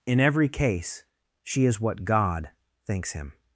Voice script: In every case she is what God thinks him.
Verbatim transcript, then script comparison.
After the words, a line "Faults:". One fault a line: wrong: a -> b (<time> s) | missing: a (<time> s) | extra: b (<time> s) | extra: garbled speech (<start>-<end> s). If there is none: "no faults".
In every case she is what God thinks him.
Faults:
no faults